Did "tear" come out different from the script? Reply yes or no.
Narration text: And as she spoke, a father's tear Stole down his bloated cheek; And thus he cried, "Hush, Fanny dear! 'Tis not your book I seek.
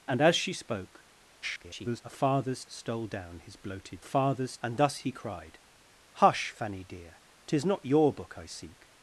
yes